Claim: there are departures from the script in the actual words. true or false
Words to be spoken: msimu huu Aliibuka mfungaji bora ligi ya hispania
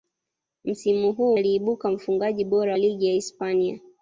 false